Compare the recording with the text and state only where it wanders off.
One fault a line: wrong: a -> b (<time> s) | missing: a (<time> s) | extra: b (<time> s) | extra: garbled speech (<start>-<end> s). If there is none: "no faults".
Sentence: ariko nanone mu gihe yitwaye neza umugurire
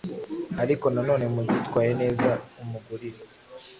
missing: gihe (1.4 s)